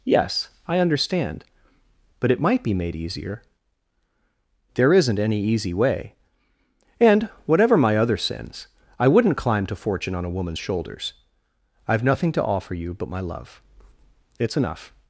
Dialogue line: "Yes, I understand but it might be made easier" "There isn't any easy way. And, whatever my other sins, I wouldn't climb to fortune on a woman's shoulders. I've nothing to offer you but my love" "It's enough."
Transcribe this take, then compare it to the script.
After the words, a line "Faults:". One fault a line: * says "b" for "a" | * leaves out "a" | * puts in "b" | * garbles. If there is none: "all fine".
"Yes, I understand but it might be made easier" "There isn't any easy way. And, whatever my other sins, I wouldn't climb to fortune on a woman's shoulders. I've nothing to offer you but my love" "It's enough."
Faults:
all fine